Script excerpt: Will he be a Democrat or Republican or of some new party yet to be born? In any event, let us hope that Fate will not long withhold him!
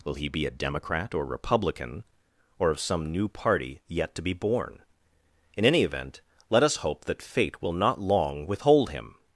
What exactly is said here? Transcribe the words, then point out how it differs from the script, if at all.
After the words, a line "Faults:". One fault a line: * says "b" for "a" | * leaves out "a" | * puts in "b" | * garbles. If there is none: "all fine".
Will he be a Democrat or Republican or of some new party yet to be born? In any event, let us hope that Fate will not long withhold him!
Faults:
all fine